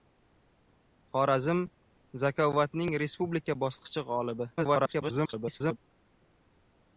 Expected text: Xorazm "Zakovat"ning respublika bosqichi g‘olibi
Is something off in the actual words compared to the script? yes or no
yes